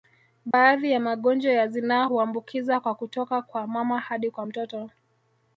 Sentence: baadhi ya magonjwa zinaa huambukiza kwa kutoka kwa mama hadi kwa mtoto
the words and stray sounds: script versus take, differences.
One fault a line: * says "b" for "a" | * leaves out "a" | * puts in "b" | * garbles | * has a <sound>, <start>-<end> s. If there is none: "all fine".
* has a dropout, 0.5-0.5 s
* puts in "ya"